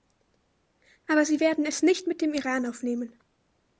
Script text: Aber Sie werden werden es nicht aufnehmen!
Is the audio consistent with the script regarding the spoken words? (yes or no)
no